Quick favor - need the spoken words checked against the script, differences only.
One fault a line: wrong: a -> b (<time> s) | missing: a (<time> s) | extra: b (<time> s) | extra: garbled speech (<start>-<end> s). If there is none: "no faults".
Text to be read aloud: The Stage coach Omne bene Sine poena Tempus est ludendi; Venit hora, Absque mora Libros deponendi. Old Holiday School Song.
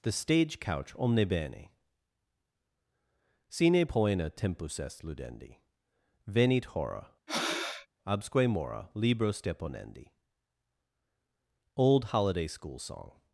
wrong: coach -> couch (0.6 s)